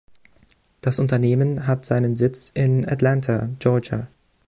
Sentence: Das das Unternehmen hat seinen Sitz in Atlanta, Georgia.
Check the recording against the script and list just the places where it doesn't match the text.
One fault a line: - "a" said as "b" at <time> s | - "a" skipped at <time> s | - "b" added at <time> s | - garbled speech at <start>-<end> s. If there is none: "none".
- "das" skipped at 1.0 s